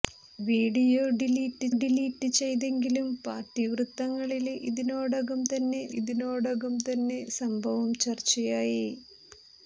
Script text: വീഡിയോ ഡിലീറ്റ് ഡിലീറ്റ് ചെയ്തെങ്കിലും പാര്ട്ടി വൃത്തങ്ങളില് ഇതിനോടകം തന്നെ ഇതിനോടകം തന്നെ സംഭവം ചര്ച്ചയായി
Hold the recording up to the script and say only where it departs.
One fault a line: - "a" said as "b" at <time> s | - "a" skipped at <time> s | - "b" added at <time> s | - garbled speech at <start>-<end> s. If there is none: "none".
none